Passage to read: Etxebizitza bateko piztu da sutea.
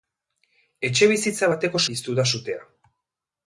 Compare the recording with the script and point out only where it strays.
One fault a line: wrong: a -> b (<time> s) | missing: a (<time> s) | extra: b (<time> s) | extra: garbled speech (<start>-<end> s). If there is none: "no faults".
no faults